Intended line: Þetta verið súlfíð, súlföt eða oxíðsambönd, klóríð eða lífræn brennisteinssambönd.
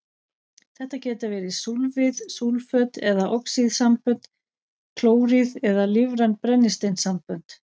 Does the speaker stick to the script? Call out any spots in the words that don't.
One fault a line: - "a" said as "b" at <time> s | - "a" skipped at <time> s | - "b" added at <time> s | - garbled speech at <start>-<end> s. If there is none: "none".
- "geta" added at 1.0 s